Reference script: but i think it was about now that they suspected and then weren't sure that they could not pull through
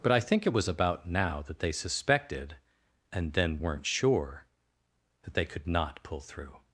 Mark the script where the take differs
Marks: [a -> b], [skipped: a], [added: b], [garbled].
but i think it was about now that they suspected and then weren't sure that they could not pull through